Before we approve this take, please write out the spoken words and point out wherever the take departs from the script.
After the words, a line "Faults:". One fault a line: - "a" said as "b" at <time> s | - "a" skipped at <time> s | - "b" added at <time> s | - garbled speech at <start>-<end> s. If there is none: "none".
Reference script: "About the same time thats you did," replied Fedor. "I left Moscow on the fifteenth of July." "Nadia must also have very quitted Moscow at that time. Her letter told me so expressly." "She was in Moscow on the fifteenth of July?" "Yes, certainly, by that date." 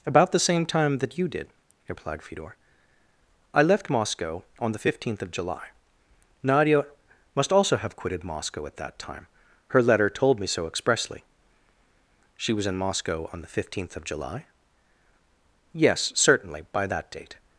"About the same time that you did," replied Fedor. "I left Moscow on the fifteenth of July." "Nadia must also have quitted Moscow at that time. Her letter told me so expressly." "She was in Moscow on the fifteenth of July?" "Yes, certainly, by that date."
Faults:
- "thats" said as "that" at 1.0 s
- "very" skipped at 8.0 s